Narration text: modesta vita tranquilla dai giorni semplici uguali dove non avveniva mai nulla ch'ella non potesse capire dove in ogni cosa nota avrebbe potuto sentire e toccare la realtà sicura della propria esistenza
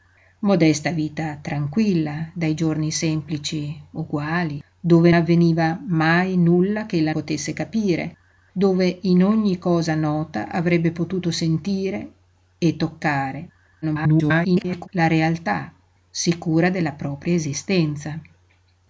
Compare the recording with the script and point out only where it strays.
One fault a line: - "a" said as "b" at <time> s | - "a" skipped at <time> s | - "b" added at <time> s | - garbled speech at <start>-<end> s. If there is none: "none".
- "non" skipped at 5.1 s
- "non" skipped at 7.1 s
- garbled speech at 13.8-14.9 s